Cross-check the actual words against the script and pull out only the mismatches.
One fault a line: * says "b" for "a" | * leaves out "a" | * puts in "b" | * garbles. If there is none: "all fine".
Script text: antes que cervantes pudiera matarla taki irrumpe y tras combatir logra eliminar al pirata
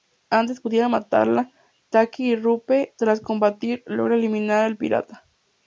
* leaves out "que cervantes"
* leaves out "y"